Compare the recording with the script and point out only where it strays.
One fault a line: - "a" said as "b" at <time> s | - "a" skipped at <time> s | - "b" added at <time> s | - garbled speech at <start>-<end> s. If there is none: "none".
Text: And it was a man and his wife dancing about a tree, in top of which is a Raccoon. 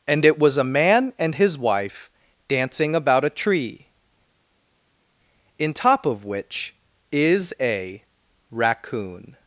none